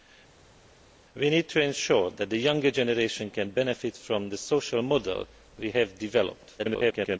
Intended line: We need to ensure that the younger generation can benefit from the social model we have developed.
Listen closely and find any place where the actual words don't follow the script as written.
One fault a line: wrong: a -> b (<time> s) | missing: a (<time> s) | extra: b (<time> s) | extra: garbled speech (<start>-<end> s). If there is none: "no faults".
extra: garbled speech (6.6-7.2 s)